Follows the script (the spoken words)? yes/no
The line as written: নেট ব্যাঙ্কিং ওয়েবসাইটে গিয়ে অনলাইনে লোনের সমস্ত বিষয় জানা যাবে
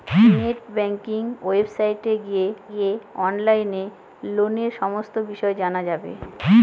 no